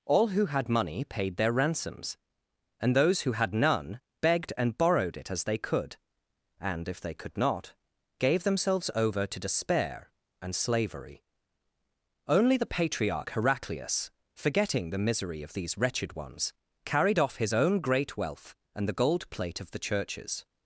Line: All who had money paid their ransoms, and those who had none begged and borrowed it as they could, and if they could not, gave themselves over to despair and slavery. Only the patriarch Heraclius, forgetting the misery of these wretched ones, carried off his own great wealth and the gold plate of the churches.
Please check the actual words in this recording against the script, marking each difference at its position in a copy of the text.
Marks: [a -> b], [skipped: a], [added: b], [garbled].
All who had money paid their ransoms, and those who had none begged and borrowed it as they could, and if they could not, gave themselves over to despair and slavery. Only the patriarch Heraclius, forgetting the misery of these wretched ones, carried off his own great wealth and the gold plate of the churches.